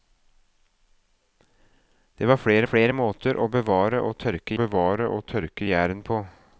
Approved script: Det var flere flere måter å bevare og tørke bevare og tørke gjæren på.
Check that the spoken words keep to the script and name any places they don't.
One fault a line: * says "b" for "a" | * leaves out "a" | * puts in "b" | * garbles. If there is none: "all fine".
all fine